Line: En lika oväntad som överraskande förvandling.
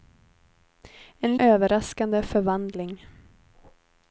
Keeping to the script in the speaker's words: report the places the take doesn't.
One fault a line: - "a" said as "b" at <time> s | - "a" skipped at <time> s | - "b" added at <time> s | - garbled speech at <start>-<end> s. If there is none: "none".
- "lika oväntad som" skipped at 1.4 s